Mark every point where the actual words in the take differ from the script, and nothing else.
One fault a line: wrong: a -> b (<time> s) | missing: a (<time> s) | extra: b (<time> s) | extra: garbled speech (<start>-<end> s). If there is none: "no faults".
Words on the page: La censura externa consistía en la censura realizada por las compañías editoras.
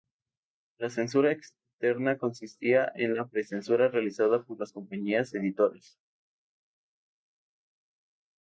extra: pre (3.2 s)